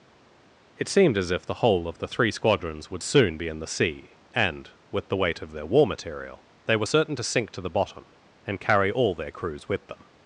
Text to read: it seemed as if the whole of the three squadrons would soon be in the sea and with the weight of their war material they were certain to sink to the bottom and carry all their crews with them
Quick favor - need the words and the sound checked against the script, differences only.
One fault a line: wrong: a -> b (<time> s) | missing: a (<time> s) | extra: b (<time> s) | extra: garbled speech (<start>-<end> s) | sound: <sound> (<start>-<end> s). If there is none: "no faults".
no faults